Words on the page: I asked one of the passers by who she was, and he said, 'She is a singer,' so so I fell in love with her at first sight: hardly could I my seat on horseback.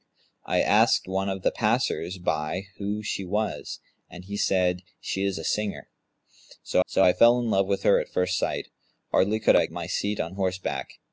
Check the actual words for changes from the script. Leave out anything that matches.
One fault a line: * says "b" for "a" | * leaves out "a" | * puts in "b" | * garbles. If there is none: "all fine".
all fine